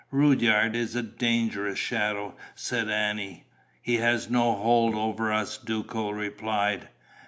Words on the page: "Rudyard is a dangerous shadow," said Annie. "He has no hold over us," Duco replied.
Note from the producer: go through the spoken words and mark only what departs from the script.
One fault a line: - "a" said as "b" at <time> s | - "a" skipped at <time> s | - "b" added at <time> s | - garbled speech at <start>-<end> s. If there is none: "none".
none